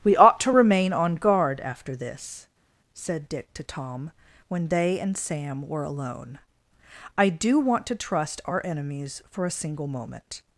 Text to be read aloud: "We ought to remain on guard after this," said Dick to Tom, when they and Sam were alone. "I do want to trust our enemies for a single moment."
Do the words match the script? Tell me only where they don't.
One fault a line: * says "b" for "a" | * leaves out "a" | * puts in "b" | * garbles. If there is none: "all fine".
all fine